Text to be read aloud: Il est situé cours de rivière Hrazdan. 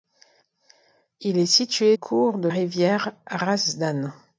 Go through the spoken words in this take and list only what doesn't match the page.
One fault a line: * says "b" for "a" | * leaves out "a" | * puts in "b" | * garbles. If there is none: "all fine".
all fine